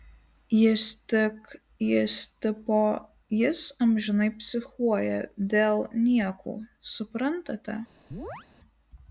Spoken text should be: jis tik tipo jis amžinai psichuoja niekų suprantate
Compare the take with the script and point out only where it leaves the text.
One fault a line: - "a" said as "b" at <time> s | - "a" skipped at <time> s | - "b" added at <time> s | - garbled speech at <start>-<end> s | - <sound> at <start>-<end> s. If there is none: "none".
- "jis" added at 1.9 s
- "dėl" added at 5.6 s
- chirp at 8.1-8.5 s